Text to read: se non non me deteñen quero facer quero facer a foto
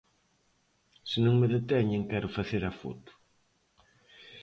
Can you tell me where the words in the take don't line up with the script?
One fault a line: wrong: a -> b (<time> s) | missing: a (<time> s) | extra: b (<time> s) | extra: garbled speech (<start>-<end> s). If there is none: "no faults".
missing: non (1.4 s)
missing: quero facer (2.6 s)